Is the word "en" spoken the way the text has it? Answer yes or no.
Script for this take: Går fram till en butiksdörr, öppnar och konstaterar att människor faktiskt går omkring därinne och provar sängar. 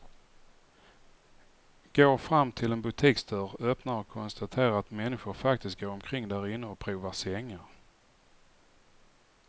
yes